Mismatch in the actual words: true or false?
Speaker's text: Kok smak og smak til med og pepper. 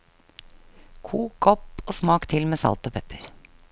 true